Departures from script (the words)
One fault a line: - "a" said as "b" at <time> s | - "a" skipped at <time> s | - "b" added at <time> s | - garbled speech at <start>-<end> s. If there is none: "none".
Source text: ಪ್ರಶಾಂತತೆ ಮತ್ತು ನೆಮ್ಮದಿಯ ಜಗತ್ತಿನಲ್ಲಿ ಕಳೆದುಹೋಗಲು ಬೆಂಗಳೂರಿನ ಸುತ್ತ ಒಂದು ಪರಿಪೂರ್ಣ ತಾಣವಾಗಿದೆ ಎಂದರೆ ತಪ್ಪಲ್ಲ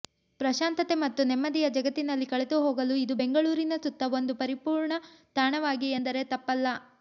- "ಇದು" added at 3.0 s